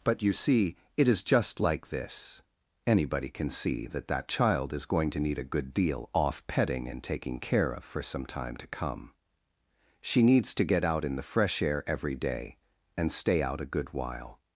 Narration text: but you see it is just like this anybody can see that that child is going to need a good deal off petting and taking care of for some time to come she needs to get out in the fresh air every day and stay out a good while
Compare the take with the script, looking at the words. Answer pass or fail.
pass